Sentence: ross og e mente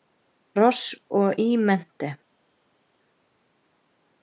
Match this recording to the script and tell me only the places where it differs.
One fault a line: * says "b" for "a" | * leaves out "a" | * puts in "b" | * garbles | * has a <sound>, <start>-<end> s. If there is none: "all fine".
all fine